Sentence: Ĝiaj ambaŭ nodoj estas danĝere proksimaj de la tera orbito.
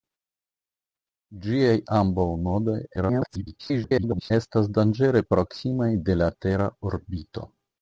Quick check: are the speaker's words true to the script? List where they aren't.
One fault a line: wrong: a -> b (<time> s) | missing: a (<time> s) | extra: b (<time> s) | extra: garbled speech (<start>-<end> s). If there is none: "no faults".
extra: garbled speech (3.0-4.3 s)